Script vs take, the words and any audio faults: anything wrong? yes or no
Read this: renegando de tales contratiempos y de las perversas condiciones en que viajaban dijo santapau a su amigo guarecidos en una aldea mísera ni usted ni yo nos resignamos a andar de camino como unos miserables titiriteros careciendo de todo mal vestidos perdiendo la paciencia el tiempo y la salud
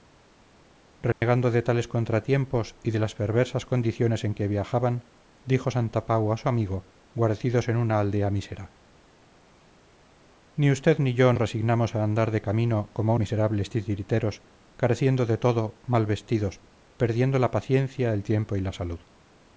yes